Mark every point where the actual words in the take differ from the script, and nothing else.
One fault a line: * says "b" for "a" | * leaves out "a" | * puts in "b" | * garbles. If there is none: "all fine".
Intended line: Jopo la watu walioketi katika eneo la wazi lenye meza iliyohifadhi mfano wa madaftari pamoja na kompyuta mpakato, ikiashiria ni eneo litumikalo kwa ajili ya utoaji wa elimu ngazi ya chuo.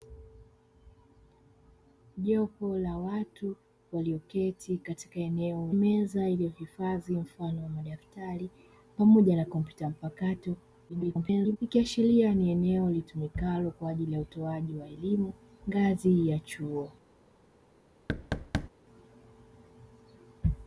* leaves out "la wazi lenye"
* garbles